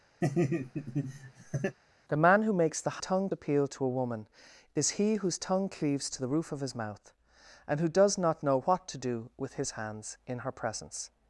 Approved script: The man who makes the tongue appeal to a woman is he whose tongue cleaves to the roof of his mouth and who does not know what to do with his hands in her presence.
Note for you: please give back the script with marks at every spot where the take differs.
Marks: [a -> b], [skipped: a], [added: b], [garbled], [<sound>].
[laugh] The man who makes the tongue appeal to a woman is he whose tongue cleaves to the roof of his mouth and who does not know what to do with his hands in her presence.